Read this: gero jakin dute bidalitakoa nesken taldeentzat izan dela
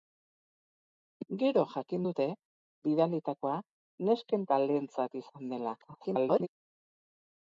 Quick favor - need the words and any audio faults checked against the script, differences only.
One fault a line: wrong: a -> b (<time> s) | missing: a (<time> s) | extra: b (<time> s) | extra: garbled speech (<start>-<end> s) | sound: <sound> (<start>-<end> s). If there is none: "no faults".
extra: garbled speech (5.8-6.5 s)